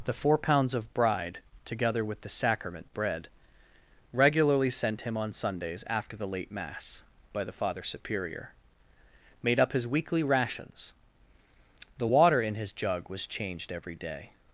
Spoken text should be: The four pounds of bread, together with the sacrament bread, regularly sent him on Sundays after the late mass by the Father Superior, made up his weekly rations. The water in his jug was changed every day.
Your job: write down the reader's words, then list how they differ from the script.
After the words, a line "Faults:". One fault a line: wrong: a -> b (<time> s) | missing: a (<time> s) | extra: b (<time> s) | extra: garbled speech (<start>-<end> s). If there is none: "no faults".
The four pounds of bride, together with the sacrament bread, regularly sent him on Sundays after the late mass by the Father Superior, made up his weekly rations. The water in his jug was changed every day.
Faults:
wrong: bread -> bride (0.9 s)